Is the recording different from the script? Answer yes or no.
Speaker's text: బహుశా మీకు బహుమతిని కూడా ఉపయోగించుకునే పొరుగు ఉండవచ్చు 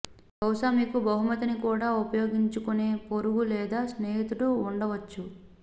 yes